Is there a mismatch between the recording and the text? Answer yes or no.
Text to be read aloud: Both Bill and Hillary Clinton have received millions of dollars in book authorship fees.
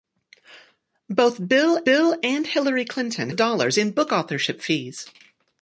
yes